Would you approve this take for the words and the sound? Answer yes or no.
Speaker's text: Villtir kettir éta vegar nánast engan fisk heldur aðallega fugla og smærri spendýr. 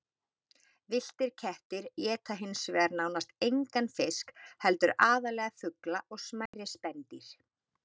no